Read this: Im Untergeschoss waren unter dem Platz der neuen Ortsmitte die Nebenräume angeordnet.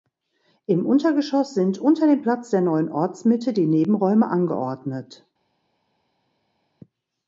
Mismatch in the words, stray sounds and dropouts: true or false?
true